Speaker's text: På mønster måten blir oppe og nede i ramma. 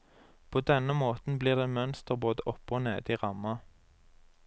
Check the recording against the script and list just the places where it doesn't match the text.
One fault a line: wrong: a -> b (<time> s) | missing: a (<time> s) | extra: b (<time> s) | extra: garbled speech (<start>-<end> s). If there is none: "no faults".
wrong: mønster -> denne (0.6 s)
extra: det mønster både (1.6 s)